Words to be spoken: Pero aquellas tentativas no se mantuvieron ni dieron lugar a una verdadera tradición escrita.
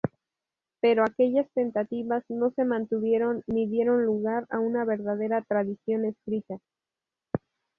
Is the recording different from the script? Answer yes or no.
no